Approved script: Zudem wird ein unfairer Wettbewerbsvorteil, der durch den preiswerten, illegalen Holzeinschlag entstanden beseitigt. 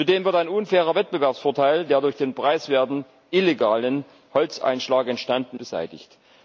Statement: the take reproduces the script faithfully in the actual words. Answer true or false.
true